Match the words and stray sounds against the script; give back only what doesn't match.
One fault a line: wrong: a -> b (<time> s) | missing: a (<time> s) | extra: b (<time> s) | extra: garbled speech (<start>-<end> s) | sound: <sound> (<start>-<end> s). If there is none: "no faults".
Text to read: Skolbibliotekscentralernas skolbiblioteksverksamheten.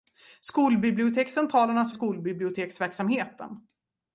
no faults